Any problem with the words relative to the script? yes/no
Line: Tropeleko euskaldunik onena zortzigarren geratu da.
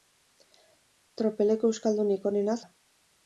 yes